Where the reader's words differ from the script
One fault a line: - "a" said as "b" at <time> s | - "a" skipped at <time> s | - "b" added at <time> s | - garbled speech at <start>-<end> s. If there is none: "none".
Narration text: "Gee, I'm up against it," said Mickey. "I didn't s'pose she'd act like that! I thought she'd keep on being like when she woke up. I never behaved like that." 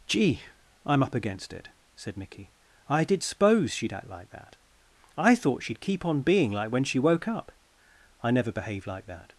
- "didn't" said as "did" at 3.0 s